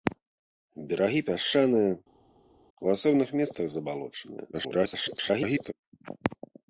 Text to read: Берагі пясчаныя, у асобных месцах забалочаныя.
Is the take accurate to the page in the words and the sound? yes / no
no